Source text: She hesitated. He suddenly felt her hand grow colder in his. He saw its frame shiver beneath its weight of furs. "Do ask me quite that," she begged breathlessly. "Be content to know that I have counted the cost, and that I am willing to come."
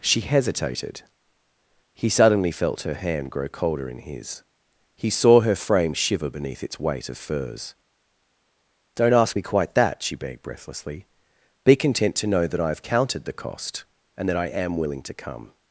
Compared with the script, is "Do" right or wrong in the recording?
wrong